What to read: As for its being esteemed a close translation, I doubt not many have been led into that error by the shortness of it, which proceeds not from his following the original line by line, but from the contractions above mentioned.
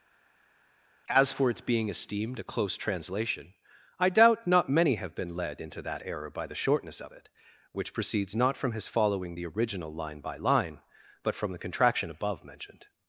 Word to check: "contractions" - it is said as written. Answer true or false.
false